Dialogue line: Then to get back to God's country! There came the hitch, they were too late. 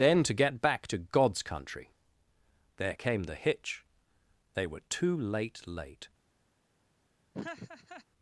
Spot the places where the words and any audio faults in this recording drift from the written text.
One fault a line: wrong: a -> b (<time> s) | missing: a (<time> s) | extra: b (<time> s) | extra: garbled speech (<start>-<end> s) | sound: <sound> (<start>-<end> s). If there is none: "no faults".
extra: late (5.7 s)
sound: laugh (7.3-8.0 s)